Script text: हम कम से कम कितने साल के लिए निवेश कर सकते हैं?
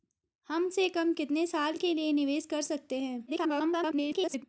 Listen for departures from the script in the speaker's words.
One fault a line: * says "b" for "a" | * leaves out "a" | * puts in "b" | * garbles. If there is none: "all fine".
* leaves out "कम"
* garbles